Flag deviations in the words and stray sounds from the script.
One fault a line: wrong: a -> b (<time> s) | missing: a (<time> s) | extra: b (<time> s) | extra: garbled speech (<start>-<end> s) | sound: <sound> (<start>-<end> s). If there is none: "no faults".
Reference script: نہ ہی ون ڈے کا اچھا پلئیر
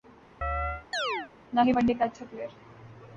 sound: chirp (0.4-1.3 s)